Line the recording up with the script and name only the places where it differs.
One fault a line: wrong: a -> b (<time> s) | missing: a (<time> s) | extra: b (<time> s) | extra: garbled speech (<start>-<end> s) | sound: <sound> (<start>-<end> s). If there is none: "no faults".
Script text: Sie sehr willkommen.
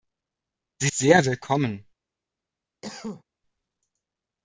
sound: cough (2.8-3.2 s)